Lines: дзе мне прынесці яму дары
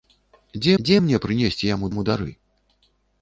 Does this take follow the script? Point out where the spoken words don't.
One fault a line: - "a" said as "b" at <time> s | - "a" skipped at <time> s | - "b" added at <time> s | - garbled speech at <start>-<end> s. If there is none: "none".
- "дзе" added at 0.8 s
- "яму" added at 1.9 s